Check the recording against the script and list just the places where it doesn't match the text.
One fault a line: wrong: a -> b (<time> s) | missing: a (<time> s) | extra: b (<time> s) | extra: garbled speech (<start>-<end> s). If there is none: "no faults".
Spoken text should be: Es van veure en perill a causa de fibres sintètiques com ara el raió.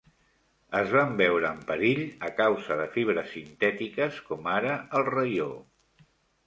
no faults